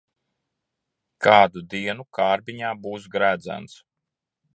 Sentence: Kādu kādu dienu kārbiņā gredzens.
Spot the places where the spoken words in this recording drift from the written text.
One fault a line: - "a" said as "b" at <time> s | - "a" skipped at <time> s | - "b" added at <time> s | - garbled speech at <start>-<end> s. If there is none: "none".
- "kādu" skipped at 1.6 s
- "būs" added at 2.9 s